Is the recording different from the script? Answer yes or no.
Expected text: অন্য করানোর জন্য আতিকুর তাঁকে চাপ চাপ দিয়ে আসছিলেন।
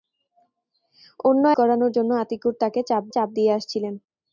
no